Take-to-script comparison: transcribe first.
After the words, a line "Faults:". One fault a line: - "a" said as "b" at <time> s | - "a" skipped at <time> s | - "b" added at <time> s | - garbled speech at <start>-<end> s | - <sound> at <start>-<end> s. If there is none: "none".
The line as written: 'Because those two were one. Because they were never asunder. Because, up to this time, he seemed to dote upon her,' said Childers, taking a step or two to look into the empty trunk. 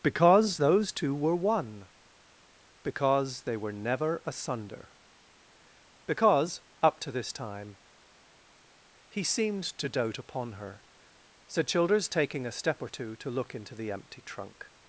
'Because those two were one. Because they were never asunder. Because, up to this time, he seemed to dote upon her,' said Childers, taking a step or two to look into the empty trunk.
Faults:
none